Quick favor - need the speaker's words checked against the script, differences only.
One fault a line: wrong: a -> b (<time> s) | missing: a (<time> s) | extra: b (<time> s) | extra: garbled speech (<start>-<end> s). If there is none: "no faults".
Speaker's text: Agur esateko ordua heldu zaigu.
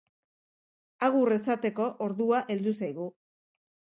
no faults